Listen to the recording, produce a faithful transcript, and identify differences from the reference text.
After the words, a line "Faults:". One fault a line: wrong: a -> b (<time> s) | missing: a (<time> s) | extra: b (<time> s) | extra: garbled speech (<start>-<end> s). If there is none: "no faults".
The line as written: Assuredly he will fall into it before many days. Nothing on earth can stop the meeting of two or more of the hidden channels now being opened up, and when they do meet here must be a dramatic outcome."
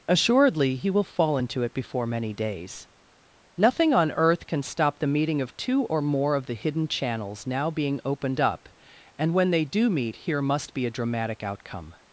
Assuredly he will fall into it before many days. Nothing on earth can stop the meeting of two or more of the hidden channels now being opened up, and when they do meet here must be a dramatic outcome."
Faults:
no faults